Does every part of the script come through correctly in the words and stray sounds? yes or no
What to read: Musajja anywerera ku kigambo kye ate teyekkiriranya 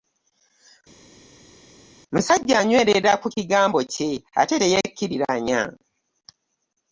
yes